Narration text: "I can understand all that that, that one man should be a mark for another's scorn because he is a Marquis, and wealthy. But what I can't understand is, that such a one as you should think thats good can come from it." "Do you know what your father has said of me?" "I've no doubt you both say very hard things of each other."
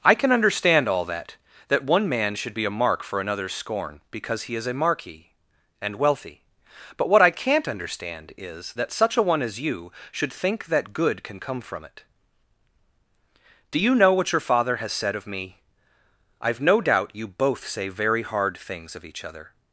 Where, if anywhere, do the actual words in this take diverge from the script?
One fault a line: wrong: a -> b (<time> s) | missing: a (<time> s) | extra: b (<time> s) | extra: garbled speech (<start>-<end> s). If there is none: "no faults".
missing: that (1.8 s)
wrong: thats -> that (10.7 s)